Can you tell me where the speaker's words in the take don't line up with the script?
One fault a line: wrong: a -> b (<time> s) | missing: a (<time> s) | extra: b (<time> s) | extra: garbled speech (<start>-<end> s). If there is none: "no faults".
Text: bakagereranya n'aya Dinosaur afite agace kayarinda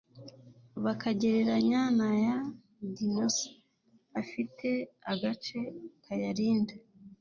no faults